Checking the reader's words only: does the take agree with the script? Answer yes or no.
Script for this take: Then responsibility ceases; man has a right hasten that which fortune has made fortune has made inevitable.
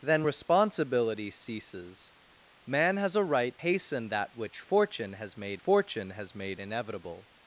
yes